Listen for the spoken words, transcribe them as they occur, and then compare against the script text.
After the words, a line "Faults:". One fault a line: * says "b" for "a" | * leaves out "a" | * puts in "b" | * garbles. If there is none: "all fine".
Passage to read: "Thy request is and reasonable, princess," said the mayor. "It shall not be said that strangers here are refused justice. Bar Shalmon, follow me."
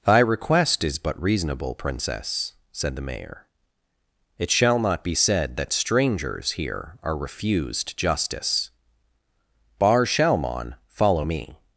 "Thy request is but reasonable, princess," said the mayor. "It shall not be said that strangers here are refused justice. Bar Shalmon, follow me."
Faults:
* says "but" for "and"